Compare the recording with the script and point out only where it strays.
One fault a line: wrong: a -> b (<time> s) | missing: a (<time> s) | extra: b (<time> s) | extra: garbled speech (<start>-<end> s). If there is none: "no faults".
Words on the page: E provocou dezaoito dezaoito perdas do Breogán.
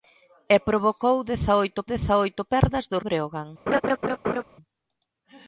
no faults